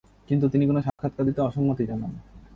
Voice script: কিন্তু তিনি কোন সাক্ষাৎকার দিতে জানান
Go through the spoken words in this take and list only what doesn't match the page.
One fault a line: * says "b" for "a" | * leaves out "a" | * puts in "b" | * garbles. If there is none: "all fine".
* puts in "অসম্মতি"